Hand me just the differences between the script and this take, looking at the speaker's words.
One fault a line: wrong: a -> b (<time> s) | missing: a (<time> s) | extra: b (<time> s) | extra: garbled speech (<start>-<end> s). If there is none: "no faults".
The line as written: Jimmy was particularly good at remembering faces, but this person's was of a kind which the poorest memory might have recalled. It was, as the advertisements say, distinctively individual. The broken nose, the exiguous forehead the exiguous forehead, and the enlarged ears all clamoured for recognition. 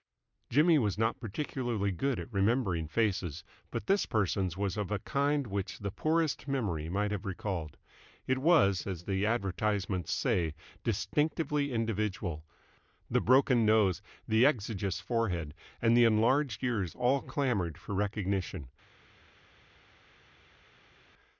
extra: not (1.0 s)
missing: the exiguous forehead (15.5 s)